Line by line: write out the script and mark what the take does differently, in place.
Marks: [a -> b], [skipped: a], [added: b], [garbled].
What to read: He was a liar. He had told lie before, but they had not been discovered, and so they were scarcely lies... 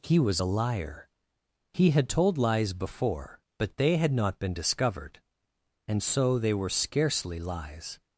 He was a liar. He had told [lie -> lies] before, but they had not been discovered, and so they were scarcely lies...